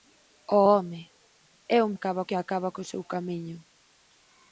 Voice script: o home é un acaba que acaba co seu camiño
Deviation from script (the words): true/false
false